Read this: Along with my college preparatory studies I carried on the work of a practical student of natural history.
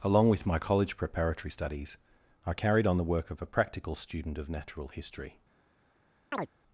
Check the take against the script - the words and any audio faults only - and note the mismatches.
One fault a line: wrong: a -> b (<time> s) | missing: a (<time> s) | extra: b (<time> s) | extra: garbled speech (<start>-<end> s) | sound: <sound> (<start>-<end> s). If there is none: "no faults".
sound: chirp (6.3-6.5 s)